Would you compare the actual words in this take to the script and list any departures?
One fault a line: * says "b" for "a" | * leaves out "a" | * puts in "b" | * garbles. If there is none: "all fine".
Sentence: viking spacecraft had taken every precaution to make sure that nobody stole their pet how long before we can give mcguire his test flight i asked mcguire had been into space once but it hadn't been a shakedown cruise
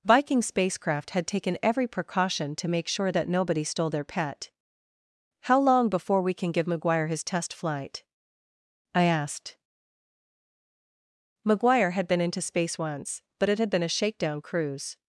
* says "had" for "hadn't"